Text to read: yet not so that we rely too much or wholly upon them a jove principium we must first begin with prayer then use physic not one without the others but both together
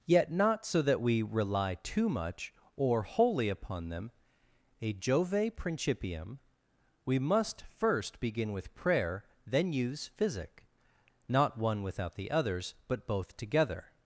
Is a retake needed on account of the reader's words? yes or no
no